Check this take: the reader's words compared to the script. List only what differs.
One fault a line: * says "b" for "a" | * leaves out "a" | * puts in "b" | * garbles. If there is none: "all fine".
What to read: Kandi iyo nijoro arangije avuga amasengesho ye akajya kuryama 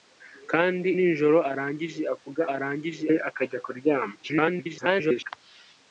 * leaves out "iyo"
* says "arangije" for "amasengesho"
* garbles